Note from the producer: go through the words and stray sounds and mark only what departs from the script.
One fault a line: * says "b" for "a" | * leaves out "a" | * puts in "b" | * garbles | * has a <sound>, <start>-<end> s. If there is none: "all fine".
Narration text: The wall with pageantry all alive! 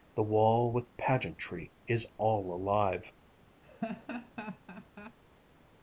* puts in "is"
* has a laugh, 3.6-5.2 s